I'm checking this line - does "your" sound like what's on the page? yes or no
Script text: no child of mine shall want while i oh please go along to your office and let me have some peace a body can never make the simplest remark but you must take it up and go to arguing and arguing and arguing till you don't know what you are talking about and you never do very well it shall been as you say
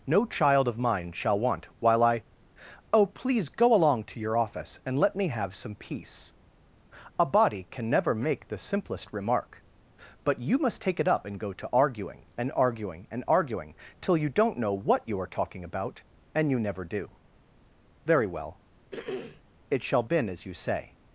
yes